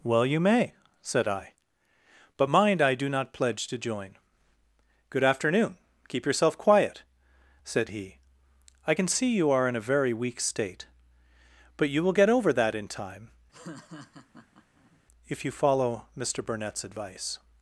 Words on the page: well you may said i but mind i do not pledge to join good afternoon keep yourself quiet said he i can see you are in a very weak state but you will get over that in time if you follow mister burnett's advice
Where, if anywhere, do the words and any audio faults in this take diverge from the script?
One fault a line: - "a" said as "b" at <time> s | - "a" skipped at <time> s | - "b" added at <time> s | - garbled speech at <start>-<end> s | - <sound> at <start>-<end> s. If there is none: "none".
- laugh at 13.5-15.0 s